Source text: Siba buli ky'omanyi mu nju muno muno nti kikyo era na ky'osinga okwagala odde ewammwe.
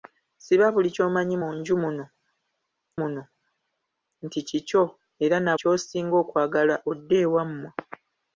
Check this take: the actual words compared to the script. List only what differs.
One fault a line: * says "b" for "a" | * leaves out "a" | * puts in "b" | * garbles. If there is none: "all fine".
all fine